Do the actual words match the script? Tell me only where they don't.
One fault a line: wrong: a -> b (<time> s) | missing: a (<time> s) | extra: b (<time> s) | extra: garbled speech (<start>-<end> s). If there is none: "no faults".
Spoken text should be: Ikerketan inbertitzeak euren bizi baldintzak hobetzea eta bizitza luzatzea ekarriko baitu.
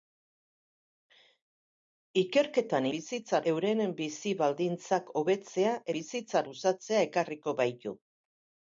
wrong: inbertitzeak -> bizitza (3.0 s)
missing: eta (5.8 s)